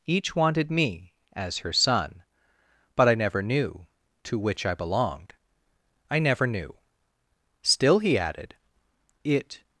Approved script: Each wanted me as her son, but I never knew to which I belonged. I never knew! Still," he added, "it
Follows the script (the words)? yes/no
yes